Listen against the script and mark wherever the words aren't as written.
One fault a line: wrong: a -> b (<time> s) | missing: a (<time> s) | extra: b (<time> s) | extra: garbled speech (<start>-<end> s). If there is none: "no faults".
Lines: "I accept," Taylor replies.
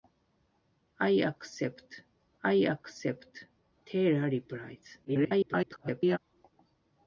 extra: I accept (2.4 s)
extra: garbled speech (5.0-6.2 s)